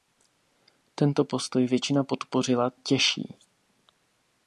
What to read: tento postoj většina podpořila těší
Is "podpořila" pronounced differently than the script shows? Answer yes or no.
no